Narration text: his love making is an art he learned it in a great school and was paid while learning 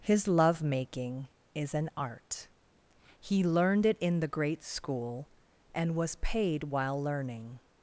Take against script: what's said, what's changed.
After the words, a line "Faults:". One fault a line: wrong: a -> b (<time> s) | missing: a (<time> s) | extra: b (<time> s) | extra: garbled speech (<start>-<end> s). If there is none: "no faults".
his love making is an art he learned it in the great school and was paid while learning
Faults:
wrong: a -> the (4.2 s)